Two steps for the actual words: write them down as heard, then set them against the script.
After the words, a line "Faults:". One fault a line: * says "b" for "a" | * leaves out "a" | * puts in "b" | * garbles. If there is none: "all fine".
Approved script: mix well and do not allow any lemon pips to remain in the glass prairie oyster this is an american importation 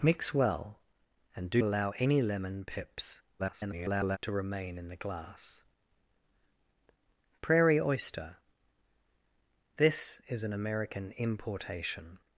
mix well and do allow any lemon pips [garbled] to remain in the glass prairie oyster this is an american importation
Faults:
* leaves out "not"
* garbles